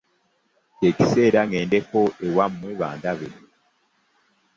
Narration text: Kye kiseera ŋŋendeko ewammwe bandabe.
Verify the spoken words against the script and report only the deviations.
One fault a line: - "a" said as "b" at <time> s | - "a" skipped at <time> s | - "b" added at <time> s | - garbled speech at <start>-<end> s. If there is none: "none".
none